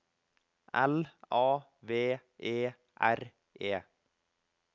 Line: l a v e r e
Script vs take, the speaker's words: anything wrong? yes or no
no